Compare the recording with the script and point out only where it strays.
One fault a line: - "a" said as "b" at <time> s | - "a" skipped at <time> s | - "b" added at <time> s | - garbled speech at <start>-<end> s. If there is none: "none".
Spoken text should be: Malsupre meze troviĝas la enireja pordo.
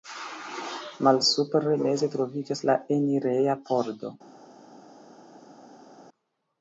none